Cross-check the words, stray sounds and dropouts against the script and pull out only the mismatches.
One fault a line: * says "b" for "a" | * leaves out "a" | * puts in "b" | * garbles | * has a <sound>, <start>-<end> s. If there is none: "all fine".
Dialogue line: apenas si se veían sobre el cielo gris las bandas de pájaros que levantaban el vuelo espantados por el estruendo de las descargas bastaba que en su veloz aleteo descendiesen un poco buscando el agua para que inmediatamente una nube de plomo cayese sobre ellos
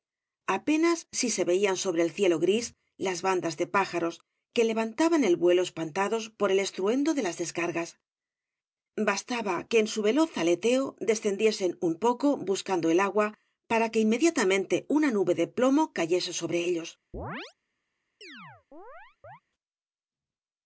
* has a chirp, 17.1-17.5 s
* has a chirp, 18.2-19.4 s